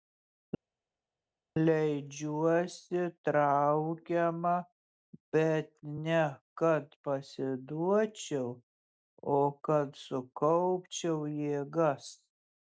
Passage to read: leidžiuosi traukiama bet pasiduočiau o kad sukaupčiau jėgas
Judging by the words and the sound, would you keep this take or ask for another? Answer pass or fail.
fail